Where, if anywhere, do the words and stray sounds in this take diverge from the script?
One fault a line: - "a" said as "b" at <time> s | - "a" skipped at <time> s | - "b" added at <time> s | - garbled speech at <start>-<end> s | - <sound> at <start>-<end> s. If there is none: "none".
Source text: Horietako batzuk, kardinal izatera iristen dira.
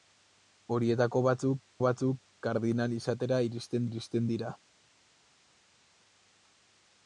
- "batzuk" added at 1.9 s
- "iristen" added at 3.9 s